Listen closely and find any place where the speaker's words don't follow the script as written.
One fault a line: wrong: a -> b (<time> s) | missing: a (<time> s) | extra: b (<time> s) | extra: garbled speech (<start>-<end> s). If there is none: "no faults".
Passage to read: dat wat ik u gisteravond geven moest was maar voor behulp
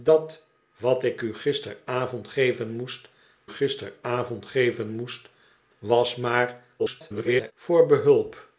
extra: gisteravond geven moest (3.5 s)
extra: garbled speech (6.8-7.5 s)